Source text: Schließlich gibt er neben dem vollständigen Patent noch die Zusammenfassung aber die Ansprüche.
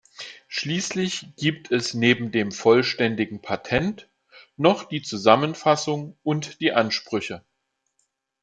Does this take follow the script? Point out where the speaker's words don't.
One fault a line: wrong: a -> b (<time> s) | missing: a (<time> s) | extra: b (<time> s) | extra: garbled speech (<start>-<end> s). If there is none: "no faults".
wrong: er -> es (1.7 s)
wrong: aber -> und (6.2 s)